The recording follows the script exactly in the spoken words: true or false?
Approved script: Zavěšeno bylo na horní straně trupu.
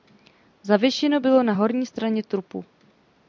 true